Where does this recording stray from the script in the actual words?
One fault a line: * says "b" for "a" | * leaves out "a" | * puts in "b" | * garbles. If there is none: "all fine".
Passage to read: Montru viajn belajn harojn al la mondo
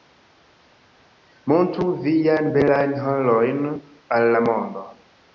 all fine